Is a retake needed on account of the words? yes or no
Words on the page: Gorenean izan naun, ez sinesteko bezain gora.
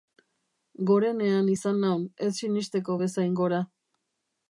no